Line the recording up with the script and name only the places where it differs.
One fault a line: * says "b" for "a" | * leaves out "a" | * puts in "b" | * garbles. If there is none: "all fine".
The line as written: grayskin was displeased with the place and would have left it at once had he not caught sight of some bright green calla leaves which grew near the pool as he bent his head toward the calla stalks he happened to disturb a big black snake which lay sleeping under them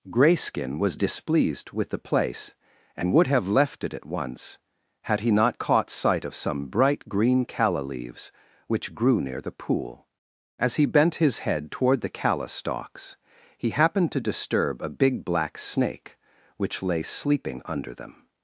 all fine